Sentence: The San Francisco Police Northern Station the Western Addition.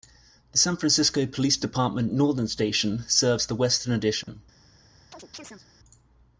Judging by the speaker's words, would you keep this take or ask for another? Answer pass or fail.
fail